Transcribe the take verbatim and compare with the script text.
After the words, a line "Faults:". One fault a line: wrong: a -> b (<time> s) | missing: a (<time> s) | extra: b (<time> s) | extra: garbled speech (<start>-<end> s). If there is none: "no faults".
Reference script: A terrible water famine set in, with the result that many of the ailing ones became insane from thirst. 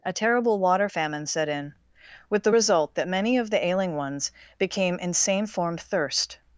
A terrible water famine set in, with the result that many of the ailing ones became insane form thirst.
Faults:
wrong: from -> form (5.5 s)